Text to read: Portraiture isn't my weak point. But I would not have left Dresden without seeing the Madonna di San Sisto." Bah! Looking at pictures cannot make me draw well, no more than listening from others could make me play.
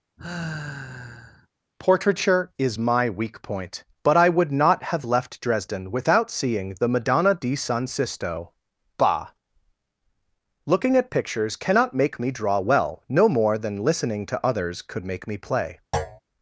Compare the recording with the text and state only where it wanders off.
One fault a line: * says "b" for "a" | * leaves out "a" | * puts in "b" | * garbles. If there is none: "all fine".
* says "is" for "isn't"
* says "to" for "from"